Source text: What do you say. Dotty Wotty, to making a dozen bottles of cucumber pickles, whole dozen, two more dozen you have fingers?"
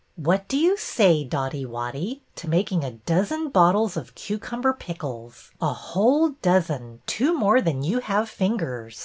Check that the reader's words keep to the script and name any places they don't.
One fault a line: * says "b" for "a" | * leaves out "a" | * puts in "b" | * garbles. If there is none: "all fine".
* puts in "a"
* says "than" for "dozen"